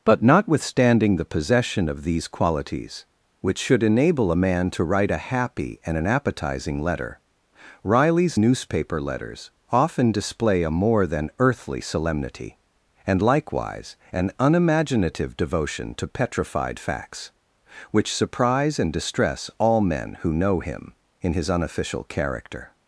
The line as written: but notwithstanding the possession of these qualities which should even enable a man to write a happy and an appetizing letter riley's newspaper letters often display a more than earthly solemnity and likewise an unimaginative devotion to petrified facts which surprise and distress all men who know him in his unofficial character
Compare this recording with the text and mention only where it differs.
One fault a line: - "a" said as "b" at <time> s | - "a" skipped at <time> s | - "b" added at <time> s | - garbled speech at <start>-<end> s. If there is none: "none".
- "even" skipped at 3.8 s